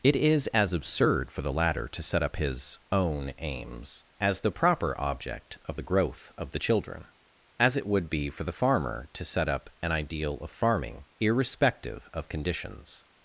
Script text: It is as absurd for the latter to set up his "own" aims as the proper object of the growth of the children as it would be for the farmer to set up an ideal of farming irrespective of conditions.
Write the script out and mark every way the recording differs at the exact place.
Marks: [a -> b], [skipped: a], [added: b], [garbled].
It is as absurd for the latter to set up his "own" aims as the proper object of the growth of the children as it would be for the farmer to set up an ideal of farming irrespective of conditions.